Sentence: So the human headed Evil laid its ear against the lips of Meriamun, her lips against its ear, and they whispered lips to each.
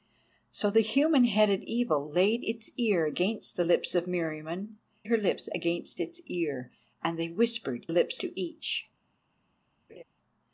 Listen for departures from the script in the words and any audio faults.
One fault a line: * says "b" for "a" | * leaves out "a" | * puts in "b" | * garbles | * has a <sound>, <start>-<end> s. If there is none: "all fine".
* has a laugh, 9.9-10.0 s